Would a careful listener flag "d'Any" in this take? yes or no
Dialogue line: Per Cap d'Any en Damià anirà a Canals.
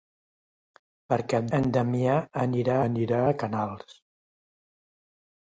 yes